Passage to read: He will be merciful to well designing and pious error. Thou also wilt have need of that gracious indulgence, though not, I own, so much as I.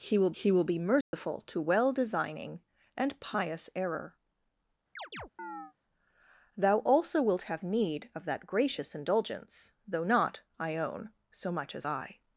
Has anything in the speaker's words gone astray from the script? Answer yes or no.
yes